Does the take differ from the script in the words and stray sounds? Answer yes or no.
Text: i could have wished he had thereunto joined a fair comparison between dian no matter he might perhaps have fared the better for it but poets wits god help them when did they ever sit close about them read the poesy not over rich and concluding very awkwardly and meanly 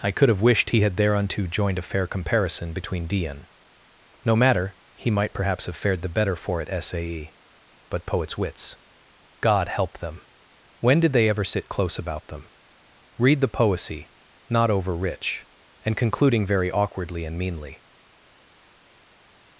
yes